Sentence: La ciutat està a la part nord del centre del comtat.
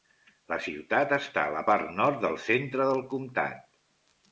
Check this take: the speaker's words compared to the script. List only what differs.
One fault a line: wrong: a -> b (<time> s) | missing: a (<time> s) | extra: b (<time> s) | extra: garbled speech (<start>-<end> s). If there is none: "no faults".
no faults